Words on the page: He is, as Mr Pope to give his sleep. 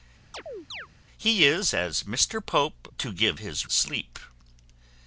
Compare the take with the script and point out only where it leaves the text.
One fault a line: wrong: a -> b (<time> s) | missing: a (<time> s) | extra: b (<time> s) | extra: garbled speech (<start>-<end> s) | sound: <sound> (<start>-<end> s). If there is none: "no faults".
sound: chirp (0.3-0.9 s)